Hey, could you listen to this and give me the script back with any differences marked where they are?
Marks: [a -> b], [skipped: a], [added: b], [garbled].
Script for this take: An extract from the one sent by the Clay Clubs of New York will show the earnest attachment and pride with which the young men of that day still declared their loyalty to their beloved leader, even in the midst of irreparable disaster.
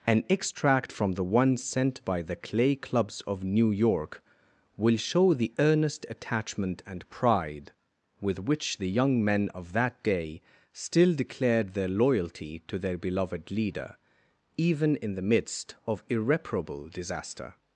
An extract from the one sent by the Clay Clubs of New York will show the earnest attachment and pride with which the young men of that day still declared their loyalty to their beloved leader, even in the midst of irreparable disaster.